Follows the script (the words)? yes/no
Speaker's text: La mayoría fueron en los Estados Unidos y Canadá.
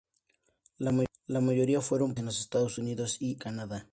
yes